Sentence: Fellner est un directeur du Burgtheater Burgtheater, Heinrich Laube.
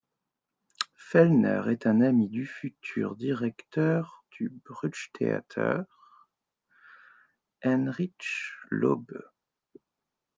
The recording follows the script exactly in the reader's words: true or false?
false